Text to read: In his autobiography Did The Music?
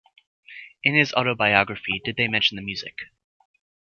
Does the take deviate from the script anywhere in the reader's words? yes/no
yes